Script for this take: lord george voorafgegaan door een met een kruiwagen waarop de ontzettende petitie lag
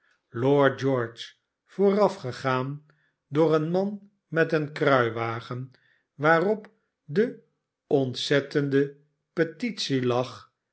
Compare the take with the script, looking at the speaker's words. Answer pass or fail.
fail